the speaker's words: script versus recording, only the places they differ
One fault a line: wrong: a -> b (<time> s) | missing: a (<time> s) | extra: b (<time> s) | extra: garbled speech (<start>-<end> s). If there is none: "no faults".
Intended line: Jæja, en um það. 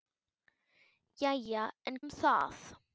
no faults